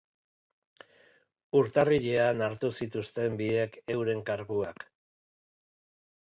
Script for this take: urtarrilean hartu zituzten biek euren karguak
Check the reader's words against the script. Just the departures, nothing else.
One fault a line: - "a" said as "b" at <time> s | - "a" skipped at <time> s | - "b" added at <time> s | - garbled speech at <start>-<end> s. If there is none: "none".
none